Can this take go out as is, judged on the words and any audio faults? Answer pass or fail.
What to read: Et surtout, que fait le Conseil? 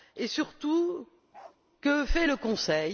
fail